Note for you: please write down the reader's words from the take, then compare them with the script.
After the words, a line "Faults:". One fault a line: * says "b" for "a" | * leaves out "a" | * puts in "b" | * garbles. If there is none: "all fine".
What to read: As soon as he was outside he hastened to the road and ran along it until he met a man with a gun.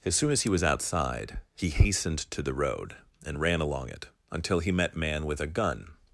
As soon as he was outside he hastened to the road and ran along it until he met man with a gun.
Faults:
* leaves out "a"